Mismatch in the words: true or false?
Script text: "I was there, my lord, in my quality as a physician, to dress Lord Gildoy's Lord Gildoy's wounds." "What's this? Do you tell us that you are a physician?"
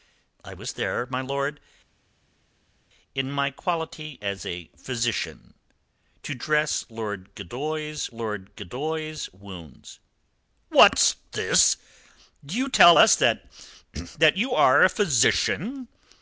false